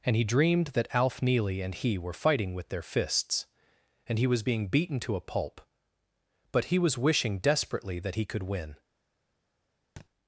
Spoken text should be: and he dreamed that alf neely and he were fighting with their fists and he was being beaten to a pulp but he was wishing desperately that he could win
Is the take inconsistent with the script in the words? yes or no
no